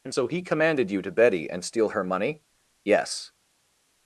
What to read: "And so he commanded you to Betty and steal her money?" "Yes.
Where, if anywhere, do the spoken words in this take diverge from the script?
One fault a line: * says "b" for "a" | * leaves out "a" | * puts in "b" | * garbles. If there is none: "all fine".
all fine